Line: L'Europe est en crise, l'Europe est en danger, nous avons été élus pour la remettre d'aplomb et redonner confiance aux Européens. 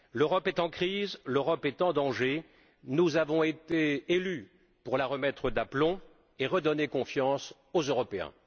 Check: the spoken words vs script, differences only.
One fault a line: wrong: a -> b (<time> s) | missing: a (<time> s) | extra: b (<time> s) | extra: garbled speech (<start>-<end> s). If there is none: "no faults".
no faults